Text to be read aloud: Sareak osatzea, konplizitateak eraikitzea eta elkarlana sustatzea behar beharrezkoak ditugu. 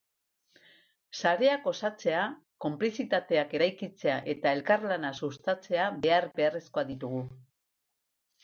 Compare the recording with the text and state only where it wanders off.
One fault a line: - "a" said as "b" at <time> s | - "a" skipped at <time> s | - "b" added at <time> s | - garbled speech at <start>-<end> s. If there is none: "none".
none